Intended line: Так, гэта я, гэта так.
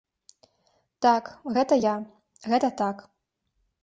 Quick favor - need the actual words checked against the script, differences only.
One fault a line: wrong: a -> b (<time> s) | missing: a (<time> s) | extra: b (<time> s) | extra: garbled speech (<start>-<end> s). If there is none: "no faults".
no faults